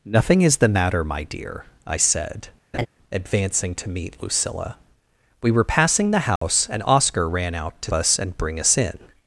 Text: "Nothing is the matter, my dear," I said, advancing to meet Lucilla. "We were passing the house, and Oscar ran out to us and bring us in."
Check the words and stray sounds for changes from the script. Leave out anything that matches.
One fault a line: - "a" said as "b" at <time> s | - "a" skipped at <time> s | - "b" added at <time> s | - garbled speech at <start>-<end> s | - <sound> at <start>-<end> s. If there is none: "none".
- laugh at 2.7-2.9 s
- dropout at 6.4-6.4 s